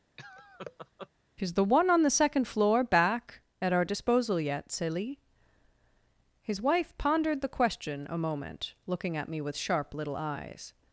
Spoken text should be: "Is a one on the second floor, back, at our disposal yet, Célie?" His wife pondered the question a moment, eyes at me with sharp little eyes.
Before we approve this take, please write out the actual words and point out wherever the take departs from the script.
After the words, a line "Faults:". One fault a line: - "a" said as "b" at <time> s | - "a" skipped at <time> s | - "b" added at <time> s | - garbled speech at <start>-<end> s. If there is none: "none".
"Is the one on the second floor, back, at our disposal yet, Célie?" His wife pondered the question a moment, looking at me with sharp little eyes.
Faults:
- "a" said as "the" at 1.5 s
- "eyes" said as "looking" at 8.9 s